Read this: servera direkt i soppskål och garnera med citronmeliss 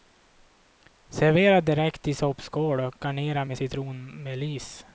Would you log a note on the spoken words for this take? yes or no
no